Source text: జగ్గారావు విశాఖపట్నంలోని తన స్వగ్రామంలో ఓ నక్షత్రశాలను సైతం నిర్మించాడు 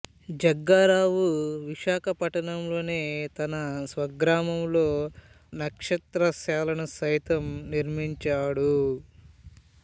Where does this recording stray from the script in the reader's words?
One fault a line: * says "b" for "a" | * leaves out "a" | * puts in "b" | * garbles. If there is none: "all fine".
* leaves out "ఓ"